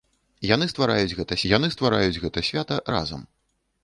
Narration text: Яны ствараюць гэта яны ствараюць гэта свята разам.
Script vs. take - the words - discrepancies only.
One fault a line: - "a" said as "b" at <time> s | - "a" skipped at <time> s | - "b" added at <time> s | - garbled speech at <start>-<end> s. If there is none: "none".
none